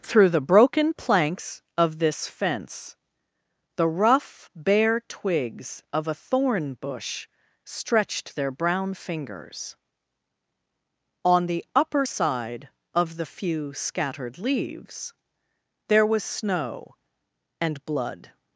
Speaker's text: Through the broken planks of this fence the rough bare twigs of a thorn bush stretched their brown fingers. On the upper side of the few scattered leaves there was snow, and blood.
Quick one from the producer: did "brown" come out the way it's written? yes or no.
yes